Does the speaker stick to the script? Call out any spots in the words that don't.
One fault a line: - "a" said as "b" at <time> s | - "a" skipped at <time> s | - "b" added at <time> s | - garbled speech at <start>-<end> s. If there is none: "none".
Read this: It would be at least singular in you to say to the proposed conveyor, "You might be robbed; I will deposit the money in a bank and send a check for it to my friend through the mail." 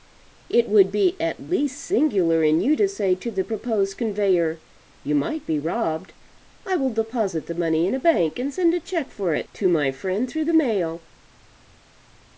none